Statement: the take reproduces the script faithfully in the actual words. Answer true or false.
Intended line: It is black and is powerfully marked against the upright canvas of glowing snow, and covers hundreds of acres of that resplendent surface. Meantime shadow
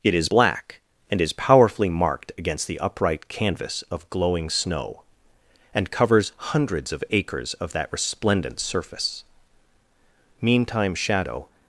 true